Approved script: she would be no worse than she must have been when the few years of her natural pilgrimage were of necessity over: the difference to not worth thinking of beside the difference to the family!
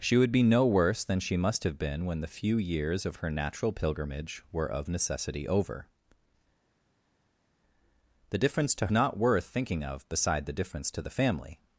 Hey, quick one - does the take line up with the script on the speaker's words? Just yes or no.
yes